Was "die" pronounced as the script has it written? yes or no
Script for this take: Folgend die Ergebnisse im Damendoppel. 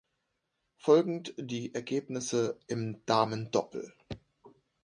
yes